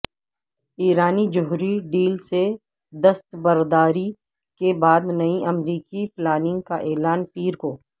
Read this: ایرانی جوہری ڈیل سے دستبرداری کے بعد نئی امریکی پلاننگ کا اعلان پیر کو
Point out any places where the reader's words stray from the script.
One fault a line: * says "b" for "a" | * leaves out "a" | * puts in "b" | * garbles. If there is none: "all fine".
all fine